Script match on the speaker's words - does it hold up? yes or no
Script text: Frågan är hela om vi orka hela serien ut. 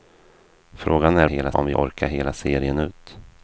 yes